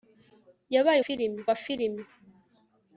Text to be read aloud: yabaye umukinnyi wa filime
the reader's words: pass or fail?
fail